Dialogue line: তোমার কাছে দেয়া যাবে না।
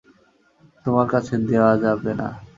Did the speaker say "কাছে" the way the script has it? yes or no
yes